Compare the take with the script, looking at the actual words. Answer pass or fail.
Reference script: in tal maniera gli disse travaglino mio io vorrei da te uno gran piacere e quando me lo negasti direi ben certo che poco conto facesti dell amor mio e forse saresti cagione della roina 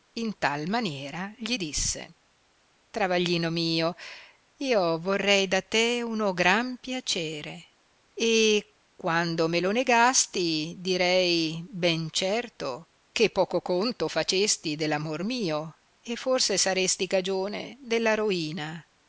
pass